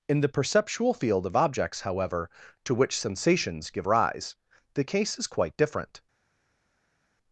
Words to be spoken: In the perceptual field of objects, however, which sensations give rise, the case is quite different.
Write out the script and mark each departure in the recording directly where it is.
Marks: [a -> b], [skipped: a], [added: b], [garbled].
In the perceptual field of objects, however, [added: to] which sensations give rise, the case is quite different.